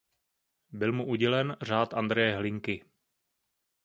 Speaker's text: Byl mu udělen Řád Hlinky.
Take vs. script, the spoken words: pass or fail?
fail